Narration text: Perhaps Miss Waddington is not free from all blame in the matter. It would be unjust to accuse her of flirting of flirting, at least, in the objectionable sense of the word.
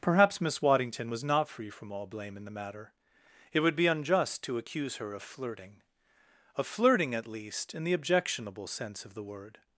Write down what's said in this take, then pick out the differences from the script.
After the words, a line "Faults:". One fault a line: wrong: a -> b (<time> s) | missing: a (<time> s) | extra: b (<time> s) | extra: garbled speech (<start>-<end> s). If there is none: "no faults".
Perhaps Miss Waddington was not free from all blame in the matter. It would be unjust to accuse her of flirting of flirting, at least, in the objectionable sense of the word.
Faults:
wrong: is -> was (1.1 s)